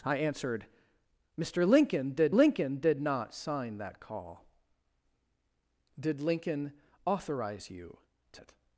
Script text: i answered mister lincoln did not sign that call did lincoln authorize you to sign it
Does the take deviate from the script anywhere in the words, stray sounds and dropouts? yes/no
yes